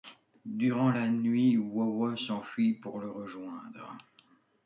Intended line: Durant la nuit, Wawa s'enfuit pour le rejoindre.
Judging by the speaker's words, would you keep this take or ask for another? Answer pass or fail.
pass